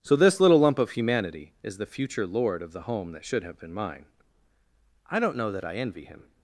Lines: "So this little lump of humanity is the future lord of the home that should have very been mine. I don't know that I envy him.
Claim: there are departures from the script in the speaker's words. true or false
true